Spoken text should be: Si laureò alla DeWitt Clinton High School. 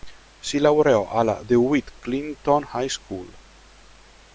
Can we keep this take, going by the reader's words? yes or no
yes